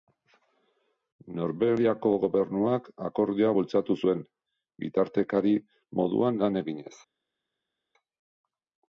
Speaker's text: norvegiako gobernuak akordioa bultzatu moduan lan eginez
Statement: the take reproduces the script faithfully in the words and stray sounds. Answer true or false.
false